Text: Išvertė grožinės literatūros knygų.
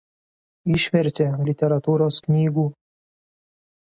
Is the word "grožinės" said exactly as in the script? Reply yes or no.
no